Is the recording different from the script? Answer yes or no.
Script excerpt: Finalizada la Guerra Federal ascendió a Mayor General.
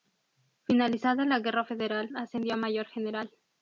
no